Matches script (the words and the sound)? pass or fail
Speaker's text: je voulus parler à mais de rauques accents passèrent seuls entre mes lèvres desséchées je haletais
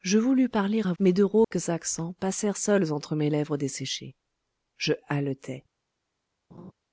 fail